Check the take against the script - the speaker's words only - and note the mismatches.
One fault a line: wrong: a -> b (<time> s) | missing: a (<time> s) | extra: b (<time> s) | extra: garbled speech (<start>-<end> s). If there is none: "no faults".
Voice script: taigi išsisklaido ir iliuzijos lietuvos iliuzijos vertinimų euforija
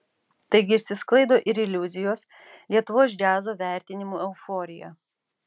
wrong: iliuzijos -> džiazo (3.2 s)